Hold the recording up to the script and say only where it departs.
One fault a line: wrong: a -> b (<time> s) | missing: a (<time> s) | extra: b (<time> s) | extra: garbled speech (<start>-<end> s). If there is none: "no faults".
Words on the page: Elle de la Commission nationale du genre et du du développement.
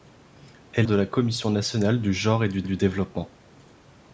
no faults